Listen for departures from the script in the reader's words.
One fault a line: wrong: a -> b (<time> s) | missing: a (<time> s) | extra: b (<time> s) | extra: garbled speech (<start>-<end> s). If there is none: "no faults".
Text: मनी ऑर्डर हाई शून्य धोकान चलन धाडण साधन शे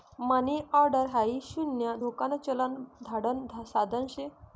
no faults